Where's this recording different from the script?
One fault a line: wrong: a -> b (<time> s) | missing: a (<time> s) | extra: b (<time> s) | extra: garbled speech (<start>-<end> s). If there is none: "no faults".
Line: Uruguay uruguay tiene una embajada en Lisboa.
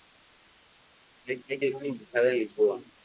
no faults